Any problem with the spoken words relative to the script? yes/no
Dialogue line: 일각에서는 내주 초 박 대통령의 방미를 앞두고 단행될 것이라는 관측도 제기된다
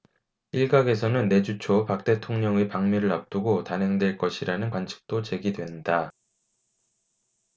no